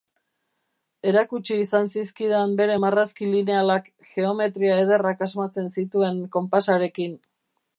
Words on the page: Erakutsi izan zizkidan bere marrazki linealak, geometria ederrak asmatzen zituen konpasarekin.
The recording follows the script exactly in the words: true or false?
true